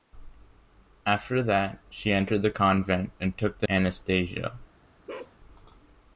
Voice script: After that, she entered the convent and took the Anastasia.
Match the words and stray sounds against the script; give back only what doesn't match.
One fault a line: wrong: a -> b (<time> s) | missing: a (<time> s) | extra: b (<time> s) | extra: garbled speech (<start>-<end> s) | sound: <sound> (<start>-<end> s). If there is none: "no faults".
sound: bark (5.1-5.4 s)